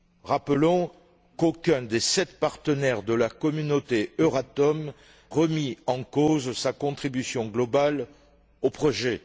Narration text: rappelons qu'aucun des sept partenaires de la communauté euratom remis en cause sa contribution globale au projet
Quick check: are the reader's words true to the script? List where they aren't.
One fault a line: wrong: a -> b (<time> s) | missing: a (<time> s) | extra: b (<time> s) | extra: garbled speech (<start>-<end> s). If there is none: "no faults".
no faults